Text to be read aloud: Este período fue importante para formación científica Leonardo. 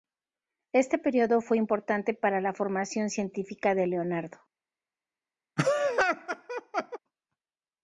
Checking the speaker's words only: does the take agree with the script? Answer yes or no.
no